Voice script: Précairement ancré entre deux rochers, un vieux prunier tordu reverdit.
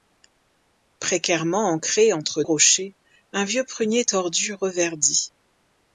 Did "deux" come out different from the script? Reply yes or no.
yes